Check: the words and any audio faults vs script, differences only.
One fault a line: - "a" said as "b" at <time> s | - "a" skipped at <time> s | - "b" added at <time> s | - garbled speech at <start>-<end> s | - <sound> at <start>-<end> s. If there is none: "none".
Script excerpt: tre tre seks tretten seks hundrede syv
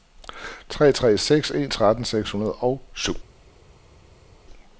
- "en" added at 1.5 s
- "og" added at 2.5 s